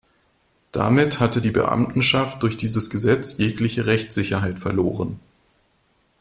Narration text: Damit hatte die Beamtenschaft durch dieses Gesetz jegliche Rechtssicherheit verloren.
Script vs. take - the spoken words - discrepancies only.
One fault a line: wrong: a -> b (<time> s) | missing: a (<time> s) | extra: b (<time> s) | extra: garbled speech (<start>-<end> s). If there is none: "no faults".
no faults